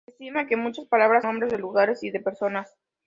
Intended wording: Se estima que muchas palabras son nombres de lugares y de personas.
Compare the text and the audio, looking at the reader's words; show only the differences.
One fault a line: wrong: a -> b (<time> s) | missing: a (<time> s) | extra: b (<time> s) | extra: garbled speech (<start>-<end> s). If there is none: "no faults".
missing: son (1.2 s)